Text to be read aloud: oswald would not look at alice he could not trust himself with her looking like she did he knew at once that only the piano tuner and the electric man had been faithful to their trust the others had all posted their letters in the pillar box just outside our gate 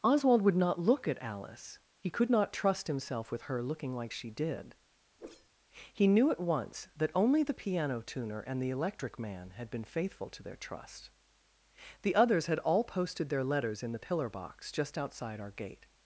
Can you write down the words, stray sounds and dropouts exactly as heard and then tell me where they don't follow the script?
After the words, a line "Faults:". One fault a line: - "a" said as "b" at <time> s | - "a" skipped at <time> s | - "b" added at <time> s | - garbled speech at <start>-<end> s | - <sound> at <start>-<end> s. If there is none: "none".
oswald would not look at alice he could not trust himself with her looking like she did he knew at once that only the piano tuner and the electric man had been faithful to their trust the others had all posted their letters in the pillar box just outside our gate
Faults:
- whoosh at 5.2-5.5 s